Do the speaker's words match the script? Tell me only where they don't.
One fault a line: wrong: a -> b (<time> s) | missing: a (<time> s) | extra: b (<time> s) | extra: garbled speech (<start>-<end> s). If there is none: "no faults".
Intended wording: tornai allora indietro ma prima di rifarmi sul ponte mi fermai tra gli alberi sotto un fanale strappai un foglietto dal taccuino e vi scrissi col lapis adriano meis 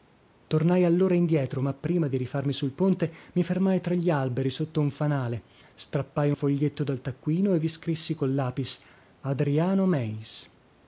missing: un (6.3 s)